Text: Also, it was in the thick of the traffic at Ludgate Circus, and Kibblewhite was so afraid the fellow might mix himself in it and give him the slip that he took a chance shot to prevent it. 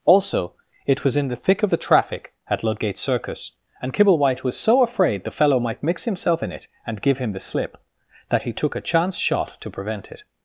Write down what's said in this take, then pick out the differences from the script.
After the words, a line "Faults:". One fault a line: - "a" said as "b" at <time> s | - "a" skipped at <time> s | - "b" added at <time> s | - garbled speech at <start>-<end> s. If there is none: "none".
Also, it was in the thick of the traffic at Ludgate Circus, and Kibblewhite was so afraid the fellow might mix himself in it and give him the slip that he took a chance shot to prevent it.
Faults:
none